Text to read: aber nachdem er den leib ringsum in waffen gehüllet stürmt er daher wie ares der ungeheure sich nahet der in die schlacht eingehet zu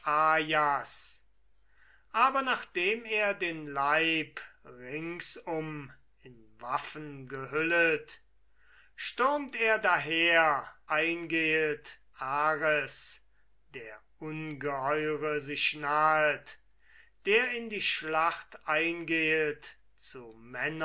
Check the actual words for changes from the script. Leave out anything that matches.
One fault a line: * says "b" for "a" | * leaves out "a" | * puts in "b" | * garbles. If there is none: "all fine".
* says "eingehet" for "wie"